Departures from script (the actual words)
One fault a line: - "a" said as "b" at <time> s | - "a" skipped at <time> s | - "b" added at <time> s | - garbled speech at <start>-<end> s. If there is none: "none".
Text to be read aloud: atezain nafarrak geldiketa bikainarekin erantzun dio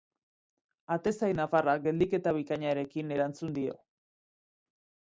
none